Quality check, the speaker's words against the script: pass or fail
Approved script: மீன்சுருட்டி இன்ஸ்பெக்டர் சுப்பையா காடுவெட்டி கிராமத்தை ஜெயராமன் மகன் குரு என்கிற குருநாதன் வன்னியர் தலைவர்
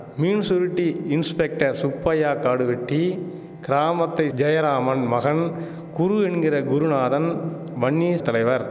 pass